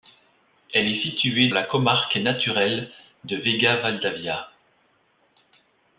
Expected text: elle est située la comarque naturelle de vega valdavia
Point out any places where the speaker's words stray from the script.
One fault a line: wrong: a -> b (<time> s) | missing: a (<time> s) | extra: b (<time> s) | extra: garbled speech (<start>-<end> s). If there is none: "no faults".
no faults